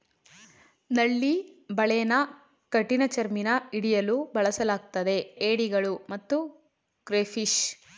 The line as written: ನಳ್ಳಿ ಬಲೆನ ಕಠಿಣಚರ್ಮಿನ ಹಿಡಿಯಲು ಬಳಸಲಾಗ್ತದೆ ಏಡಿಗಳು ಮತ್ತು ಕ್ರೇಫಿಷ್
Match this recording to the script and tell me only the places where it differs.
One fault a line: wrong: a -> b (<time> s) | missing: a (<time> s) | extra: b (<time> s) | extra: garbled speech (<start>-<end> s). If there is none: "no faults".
no faults